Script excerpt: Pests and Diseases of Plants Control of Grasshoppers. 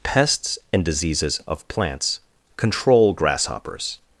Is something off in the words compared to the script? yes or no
yes